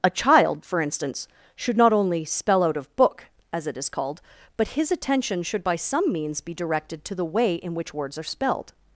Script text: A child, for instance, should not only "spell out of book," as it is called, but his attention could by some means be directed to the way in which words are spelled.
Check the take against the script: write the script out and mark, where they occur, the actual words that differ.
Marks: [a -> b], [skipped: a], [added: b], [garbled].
A child, for instance, should not only "spell out of book," as it is called, but his attention [could -> should] by some means be directed to the way in which words are spelled.